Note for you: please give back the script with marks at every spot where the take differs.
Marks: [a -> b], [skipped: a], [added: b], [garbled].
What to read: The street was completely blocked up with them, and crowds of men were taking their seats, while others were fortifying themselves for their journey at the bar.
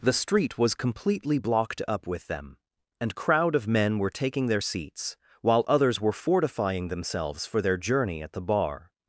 The street was completely blocked up with them, and [crowds -> crowd] of men were taking their seats, while others were fortifying themselves for their journey at the bar.